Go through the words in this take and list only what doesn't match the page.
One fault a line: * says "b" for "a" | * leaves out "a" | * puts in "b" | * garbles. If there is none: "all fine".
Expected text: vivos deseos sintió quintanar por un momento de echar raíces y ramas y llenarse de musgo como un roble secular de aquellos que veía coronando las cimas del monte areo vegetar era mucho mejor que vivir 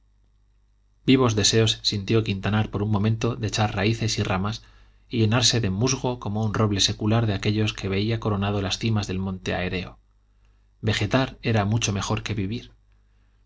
all fine